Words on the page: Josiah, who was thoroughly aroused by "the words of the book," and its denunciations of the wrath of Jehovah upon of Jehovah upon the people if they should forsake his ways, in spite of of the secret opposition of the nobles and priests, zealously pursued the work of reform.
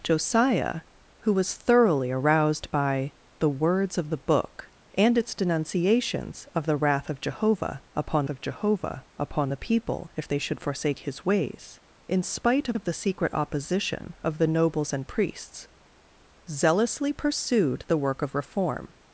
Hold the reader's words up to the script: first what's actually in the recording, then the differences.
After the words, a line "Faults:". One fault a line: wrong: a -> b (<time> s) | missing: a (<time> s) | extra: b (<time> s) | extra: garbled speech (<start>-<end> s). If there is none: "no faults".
Josiah, who was thoroughly aroused by "the words of the book," and its denunciations of the wrath of Jehovah upon of Jehovah upon the people if they should forsake his ways, in spite of of the secret opposition of the nobles and priests, zealously pursued the work of reform.
Faults:
no faults